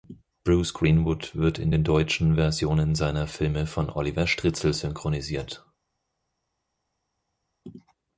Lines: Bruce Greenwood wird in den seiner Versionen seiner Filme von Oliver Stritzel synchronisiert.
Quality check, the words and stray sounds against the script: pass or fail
fail